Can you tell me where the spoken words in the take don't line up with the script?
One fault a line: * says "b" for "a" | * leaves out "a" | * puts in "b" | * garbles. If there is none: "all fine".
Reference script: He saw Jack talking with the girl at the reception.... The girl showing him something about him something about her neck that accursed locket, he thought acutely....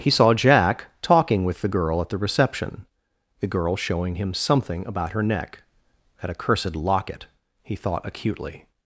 * leaves out "him something about"